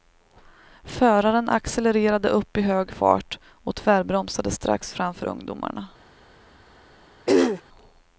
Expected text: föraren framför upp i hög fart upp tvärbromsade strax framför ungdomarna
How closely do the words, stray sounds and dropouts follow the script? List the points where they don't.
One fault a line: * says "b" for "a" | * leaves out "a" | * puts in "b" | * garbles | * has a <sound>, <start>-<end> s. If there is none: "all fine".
* says "accelererade" for "framför"
* says "och" for "upp"
* has a throat clearing, 7.3-7.6 s